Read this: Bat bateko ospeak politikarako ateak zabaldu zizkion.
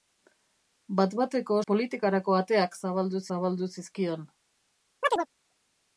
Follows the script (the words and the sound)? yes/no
no